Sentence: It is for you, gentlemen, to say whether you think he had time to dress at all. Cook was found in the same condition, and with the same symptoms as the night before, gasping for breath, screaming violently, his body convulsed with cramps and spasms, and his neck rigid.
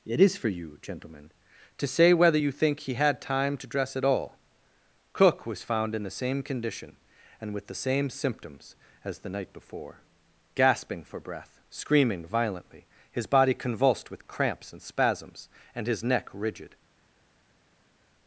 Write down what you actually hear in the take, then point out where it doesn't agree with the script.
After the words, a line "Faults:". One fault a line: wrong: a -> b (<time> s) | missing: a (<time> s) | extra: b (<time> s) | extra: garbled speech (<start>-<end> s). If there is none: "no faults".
It is for you, gentlemen, to say whether you think he had time to dress at all. Cook was found in the same condition, and with the same symptoms as the night before, gasping for breath, screaming violently, his body convulsed with cramps and spasms, and his neck rigid.
Faults:
no faults